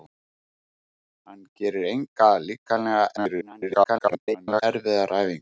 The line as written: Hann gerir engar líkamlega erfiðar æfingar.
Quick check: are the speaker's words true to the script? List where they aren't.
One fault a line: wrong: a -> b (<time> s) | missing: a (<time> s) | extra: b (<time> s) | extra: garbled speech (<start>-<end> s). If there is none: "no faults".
extra: garbled speech (3.2-4.6 s)